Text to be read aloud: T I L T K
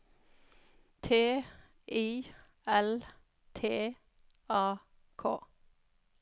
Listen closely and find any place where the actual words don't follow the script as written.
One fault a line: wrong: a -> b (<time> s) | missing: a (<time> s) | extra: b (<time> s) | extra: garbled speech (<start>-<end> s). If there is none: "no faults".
extra: A (4.5 s)